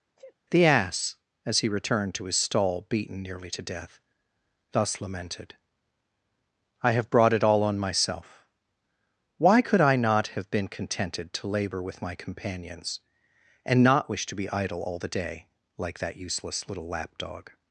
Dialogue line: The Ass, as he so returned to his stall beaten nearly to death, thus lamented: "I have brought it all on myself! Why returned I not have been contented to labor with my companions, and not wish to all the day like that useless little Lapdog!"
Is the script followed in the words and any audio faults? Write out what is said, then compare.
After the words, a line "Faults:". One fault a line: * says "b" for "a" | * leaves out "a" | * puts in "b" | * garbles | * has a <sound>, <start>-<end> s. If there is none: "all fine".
The Ass, as he returned to his stall beaten nearly to death, thus lamented: "I have brought it all on myself! Why could I not have been contented to labor with my companions, and not wish to be idle all the day like that useless little Lapdog!"
Faults:
* has a sneeze, 0.2-0.3 s
* leaves out "so"
* says "could" for "returned"
* puts in "be idle"